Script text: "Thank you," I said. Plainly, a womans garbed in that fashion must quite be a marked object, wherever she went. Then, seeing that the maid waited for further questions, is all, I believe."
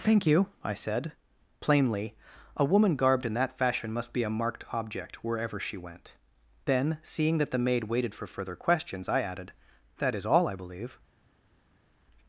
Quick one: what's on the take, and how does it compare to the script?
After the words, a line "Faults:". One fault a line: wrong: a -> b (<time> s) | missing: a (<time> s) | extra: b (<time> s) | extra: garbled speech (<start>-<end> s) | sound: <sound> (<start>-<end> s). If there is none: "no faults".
"Thank you," I said. Plainly, a woman garbed in that fashion must be a marked object, wherever she went. Then, seeing that the maid waited for further questions, I added, "That is all, I believe."
Faults:
wrong: womans -> woman (2.6 s)
missing: quite (4.1 s)
extra: I added That (9.1 s)